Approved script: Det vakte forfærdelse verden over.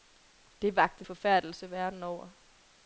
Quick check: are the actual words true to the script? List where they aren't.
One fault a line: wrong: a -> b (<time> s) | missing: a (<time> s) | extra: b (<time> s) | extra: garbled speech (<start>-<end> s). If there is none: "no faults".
no faults